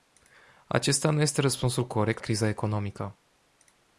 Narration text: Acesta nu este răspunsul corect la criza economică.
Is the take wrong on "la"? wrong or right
wrong